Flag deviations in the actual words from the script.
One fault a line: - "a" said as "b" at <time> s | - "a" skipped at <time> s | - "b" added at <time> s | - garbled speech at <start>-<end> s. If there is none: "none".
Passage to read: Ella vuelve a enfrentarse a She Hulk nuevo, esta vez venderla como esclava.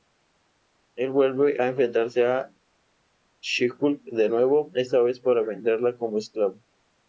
- "Ella" said as "Él" at 0.9 s
- "de" added at 4.0 s
- "para" added at 5.2 s